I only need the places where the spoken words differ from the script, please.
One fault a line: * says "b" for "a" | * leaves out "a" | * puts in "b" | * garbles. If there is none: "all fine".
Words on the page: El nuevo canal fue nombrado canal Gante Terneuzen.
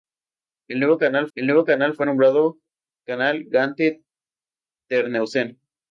* puts in "el nuevo canal"